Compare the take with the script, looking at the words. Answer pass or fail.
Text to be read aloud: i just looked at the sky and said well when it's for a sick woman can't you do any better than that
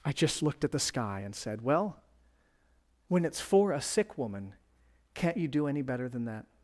pass